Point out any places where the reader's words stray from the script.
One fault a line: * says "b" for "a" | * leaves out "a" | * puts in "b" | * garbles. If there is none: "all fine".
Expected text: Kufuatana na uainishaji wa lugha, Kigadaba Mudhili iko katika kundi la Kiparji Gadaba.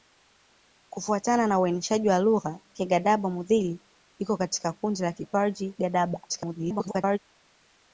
* garbles